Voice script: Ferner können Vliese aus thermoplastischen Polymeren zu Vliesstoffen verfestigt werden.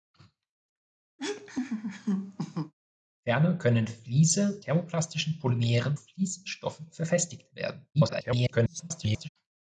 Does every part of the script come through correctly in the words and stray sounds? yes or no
no